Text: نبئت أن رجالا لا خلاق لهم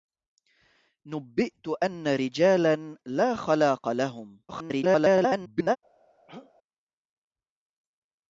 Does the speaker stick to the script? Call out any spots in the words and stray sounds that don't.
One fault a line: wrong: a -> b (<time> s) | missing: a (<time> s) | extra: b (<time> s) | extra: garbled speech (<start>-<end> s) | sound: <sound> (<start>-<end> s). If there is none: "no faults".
extra: garbled speech (4.5-5.8 s)
sound: throat clearing (6.3-6.5 s)